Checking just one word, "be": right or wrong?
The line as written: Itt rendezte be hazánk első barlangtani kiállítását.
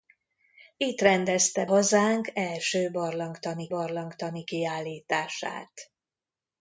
wrong